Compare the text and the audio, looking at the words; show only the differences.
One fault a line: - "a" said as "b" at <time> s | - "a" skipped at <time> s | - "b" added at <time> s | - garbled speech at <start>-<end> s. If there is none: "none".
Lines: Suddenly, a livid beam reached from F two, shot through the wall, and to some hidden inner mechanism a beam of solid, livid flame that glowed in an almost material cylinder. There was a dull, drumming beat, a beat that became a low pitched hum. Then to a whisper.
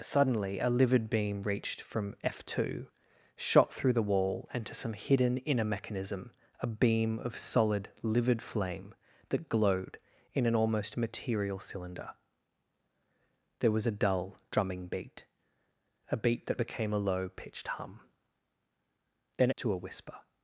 none